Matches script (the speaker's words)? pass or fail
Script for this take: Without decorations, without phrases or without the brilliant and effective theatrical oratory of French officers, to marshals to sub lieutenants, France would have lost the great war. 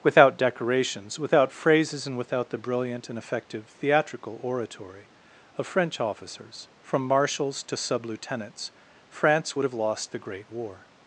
fail